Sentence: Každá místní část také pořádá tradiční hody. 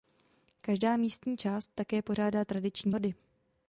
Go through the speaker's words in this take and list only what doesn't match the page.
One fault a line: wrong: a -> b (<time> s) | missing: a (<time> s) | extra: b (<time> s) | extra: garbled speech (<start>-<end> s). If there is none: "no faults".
no faults